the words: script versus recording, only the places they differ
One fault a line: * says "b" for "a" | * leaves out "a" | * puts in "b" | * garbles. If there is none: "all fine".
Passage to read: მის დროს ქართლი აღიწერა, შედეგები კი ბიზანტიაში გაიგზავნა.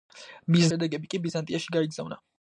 * leaves out "დროს ქართლი აღიწერა"